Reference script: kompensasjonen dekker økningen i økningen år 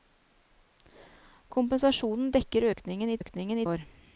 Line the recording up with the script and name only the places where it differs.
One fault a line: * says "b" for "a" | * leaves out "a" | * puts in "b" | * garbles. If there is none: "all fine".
all fine